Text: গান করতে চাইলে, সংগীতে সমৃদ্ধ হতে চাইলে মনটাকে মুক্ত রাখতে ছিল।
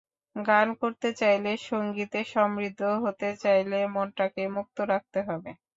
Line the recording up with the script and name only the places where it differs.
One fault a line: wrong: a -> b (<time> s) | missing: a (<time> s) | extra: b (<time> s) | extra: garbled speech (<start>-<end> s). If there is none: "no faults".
wrong: ছিল -> হবে (5.3 s)